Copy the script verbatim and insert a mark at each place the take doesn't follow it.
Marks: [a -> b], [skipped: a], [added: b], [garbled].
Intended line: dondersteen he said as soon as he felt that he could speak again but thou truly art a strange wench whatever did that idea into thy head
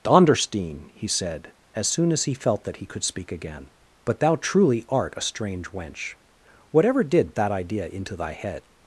dondersteen he said as soon as he felt that he could speak again but thou truly art a strange wench whatever did that idea into thy head